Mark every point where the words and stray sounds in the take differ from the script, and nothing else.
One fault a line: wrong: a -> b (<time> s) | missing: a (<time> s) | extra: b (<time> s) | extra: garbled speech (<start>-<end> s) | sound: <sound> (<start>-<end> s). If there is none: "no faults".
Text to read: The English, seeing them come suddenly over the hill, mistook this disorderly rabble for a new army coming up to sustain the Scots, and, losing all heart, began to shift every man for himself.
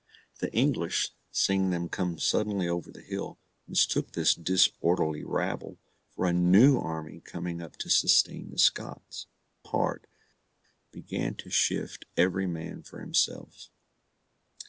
missing: and losing all (9.3 s)